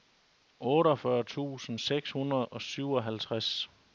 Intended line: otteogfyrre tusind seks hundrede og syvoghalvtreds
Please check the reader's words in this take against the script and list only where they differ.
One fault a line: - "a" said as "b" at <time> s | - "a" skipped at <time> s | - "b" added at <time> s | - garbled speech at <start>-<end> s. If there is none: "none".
none